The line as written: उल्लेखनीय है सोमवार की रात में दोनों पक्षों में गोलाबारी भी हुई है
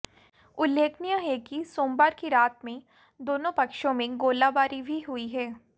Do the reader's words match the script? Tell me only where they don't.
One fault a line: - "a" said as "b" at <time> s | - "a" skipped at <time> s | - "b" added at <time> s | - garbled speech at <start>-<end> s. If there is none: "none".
- "कि" added at 1.4 s